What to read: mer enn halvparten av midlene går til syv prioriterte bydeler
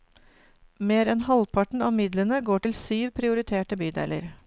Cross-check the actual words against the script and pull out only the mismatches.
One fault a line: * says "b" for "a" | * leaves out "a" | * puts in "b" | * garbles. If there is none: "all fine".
all fine